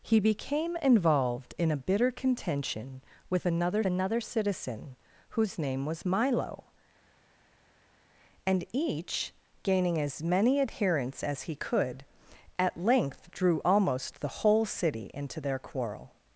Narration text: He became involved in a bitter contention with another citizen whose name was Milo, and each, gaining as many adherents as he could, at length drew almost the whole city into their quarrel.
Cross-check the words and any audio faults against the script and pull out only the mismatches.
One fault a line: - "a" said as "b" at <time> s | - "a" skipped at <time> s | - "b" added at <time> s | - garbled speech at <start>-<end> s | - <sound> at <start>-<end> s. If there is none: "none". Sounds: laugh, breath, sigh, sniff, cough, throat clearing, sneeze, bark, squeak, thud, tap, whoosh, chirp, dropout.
- "another" added at 3.8 s